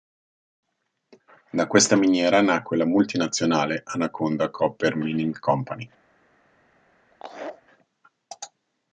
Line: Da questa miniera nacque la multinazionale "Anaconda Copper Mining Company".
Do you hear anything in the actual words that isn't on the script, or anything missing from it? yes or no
no